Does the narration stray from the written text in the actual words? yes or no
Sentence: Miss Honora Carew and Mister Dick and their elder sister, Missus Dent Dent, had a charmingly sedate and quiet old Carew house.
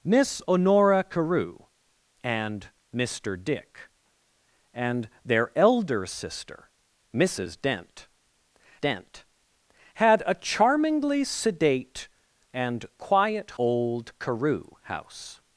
no